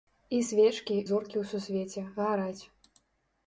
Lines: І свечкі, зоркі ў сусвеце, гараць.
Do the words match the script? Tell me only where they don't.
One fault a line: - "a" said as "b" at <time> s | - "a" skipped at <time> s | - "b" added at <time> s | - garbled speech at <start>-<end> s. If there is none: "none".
none